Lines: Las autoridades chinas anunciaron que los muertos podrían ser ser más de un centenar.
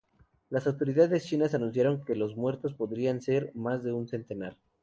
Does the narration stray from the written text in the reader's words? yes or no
yes